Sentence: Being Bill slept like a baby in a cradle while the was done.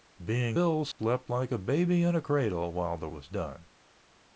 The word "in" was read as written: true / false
true